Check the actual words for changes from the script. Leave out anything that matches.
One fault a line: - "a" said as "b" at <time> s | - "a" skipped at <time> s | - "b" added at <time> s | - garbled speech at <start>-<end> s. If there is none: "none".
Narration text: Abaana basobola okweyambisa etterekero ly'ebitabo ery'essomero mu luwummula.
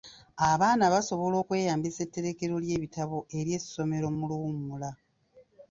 none